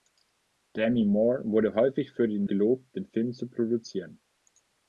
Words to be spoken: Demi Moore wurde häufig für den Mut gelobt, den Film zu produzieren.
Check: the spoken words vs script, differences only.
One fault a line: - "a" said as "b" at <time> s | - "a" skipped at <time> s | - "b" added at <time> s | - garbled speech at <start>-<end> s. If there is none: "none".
- "Mut" skipped at 2.5 s